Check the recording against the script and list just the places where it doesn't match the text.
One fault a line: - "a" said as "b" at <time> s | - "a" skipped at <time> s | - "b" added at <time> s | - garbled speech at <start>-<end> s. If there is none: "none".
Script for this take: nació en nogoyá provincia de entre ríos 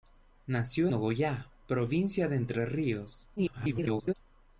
- "en" skipped at 0.9 s
- garbled speech at 3.4-4.1 s